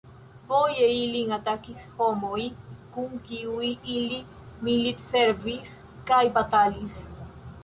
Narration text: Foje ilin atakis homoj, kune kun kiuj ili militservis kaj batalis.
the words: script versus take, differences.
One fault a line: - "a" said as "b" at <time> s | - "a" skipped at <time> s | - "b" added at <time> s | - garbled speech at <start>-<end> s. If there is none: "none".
- "kune" skipped at 2.4 s